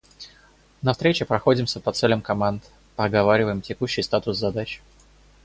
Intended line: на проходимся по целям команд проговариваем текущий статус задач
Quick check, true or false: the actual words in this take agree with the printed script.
false